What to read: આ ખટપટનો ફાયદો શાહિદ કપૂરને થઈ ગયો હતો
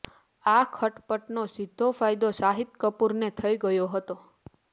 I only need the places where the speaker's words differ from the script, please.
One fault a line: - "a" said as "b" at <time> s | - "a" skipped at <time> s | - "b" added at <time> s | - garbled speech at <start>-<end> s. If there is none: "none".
- "સીધો" added at 1.5 s